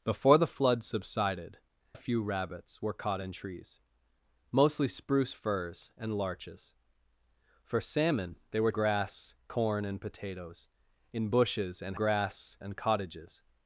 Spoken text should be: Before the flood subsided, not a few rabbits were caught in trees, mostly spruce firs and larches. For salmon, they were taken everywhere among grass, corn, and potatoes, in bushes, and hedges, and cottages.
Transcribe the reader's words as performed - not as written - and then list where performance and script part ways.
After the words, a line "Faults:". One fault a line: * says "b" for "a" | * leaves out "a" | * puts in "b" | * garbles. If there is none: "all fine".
Before the flood subsided, a few rabbits were caught in trees, mostly spruce firs and larches. For salmon, they were grass, corn, and potatoes, in bushes, and grass, and cottages.
Faults:
* leaves out "not"
* leaves out "taken everywhere among"
* says "grass" for "hedges"